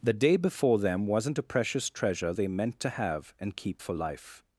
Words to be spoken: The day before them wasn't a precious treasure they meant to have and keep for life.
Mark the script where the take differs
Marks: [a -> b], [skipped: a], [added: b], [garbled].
The day before them wasn't a precious treasure they meant to have and keep for life.